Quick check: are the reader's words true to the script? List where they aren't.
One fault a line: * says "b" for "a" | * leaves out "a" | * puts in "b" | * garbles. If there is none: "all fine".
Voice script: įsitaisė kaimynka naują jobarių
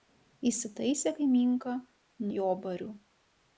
* leaves out "naują"